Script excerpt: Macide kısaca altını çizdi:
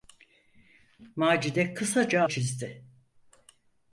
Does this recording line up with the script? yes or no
no